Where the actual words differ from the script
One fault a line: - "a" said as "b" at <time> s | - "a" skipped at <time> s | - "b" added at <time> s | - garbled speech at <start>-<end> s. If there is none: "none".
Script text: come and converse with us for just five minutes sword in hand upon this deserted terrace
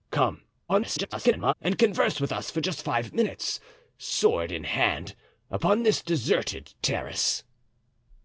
- garbled speech at 0.7-1.5 s